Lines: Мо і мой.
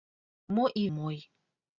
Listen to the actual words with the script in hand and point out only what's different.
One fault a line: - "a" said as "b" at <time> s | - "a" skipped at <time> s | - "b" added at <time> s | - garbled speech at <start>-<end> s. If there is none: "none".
none